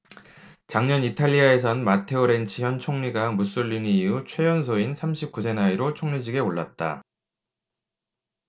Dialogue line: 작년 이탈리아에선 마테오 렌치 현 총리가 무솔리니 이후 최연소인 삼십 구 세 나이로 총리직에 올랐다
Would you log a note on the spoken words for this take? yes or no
no